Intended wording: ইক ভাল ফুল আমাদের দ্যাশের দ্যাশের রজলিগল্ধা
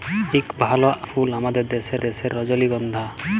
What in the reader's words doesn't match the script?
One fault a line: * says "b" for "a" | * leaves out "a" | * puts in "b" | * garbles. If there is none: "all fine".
all fine